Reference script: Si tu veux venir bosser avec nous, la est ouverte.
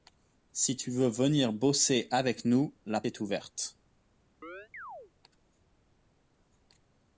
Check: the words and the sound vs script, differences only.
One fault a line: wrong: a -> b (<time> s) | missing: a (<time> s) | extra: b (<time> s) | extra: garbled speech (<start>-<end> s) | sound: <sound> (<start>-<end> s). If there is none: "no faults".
sound: chirp (4.4-5.1 s)